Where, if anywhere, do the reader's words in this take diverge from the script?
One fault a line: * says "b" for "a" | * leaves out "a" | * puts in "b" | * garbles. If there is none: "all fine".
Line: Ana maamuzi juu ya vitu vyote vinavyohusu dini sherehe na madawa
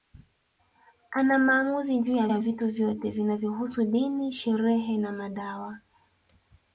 * puts in "ya"